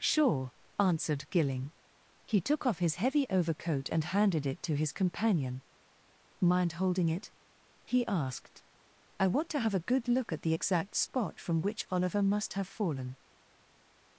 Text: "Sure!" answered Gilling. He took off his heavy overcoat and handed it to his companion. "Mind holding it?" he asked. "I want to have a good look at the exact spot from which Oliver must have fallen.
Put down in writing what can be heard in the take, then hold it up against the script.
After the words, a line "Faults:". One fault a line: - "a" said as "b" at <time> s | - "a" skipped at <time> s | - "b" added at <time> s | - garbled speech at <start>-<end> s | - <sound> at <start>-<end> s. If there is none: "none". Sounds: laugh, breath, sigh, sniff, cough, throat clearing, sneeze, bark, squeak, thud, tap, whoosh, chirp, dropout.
"Sure!" answered Gilling. He took off his heavy overcoat and handed it to his companion. "Mind holding it?" he asked. "I want to have a good look at the exact spot from which Oliver must have fallen.
Faults:
none